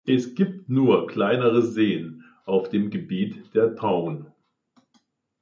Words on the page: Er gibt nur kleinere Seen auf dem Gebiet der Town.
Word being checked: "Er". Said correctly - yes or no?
no